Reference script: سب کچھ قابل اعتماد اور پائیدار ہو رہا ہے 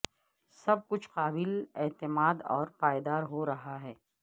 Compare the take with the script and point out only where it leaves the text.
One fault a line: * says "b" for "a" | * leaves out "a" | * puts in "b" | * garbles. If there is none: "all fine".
all fine